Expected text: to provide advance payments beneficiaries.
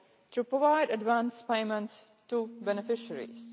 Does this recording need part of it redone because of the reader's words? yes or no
yes